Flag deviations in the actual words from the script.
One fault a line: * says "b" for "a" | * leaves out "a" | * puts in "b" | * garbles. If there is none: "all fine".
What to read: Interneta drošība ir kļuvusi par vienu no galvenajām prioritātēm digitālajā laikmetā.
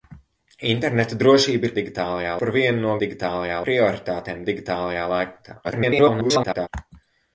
* says "digitālajā" for "kļuvusi"
* says "digitālajā" for "galvenajām"
* garbles